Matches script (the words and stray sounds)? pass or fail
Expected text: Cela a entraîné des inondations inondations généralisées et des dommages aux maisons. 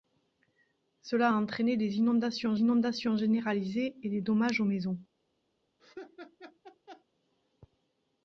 fail